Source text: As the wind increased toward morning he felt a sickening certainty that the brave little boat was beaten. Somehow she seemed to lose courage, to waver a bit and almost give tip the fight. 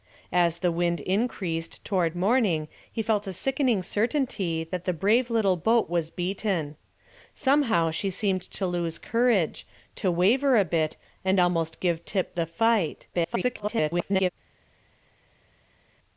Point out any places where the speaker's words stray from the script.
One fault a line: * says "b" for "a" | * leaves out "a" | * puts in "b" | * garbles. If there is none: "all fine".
* garbles